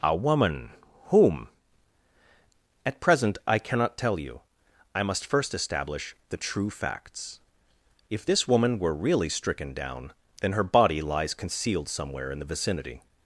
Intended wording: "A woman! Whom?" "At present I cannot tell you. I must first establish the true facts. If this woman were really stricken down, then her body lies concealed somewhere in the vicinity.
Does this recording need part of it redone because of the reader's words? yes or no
no